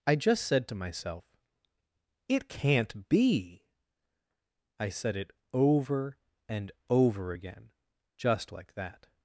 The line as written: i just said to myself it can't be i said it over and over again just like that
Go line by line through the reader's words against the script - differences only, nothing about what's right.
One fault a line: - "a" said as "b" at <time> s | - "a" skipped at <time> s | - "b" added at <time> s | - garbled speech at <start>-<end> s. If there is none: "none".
none